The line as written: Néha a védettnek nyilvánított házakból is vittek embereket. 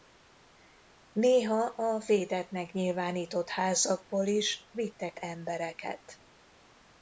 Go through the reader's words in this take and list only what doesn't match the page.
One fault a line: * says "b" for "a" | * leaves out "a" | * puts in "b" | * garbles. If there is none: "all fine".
all fine